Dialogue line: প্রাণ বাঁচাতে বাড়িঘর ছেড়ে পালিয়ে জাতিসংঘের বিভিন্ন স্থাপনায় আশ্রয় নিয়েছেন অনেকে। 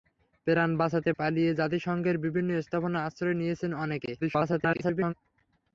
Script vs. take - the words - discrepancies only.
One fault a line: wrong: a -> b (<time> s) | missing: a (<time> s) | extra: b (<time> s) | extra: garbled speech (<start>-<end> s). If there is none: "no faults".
missing: বাড়িঘর ছেড়ে (1.1 s)
extra: garbled speech (4.2-5.1 s)